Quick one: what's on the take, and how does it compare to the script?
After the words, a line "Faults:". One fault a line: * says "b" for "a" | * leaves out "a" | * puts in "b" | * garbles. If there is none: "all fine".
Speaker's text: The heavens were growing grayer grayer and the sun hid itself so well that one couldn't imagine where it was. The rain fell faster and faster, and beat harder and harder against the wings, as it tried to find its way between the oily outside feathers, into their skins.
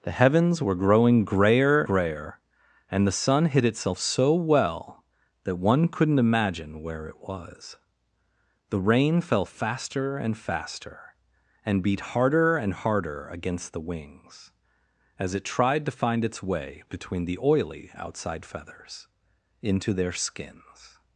The heavens were growing grayer grayer and the sun hid itself so well that one couldn't imagine where it was. The rain fell faster and faster, and beat harder and harder against the wings, as it tried to find its way between the oily outside feathers, into their skins.
Faults:
all fine